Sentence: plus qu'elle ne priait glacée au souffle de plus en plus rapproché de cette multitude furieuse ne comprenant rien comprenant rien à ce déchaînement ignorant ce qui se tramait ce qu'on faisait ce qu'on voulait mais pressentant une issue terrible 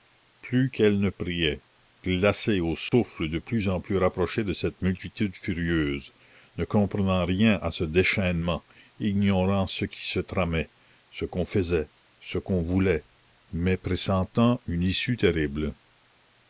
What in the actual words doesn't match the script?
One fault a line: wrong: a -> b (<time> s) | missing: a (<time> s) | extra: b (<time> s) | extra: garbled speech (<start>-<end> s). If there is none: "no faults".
missing: comprenant rien (7.6 s)